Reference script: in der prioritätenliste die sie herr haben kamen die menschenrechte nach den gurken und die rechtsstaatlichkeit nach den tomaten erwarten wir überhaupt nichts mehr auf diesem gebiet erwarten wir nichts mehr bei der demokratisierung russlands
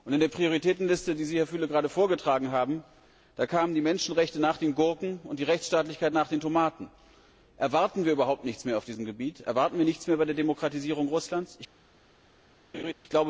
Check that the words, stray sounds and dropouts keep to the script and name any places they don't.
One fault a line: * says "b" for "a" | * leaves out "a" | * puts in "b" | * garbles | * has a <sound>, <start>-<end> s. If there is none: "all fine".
* puts in "füle gerade vorgetragen"
* has a laugh, 12.7-12.9 s